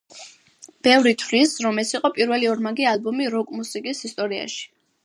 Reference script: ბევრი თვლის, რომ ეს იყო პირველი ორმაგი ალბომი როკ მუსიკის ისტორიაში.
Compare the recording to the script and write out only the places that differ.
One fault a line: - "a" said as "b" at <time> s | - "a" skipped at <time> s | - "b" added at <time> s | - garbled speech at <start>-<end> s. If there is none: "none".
none